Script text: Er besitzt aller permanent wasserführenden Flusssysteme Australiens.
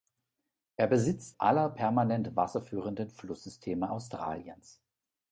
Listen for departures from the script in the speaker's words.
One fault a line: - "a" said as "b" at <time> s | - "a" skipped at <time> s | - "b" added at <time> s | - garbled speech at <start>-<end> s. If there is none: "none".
none